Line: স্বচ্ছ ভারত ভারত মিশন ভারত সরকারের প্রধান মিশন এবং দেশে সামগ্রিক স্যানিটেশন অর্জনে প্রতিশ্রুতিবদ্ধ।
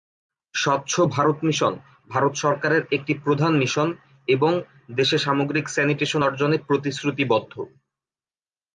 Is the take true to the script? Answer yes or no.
no